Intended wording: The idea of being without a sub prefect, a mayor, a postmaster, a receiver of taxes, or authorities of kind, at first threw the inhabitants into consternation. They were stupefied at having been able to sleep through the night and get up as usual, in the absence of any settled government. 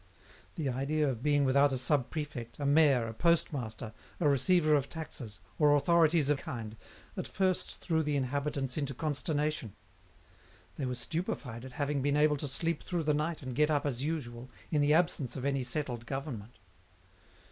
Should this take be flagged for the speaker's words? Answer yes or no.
no